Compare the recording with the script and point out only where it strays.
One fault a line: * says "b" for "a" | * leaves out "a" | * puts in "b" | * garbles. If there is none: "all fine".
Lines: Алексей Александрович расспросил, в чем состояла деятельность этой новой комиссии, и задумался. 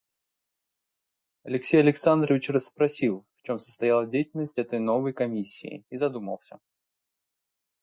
all fine